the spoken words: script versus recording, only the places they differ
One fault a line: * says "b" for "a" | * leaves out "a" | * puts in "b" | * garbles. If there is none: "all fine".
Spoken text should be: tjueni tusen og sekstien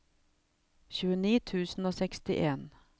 all fine